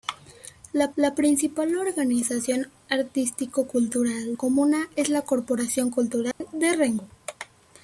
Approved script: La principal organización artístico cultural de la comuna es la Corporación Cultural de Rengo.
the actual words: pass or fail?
fail